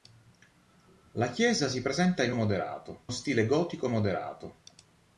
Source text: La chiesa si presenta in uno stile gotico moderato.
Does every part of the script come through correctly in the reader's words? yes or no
no